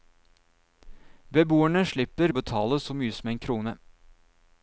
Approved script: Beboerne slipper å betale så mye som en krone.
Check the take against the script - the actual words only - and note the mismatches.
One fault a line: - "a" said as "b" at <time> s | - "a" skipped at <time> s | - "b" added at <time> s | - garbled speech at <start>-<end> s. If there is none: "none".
none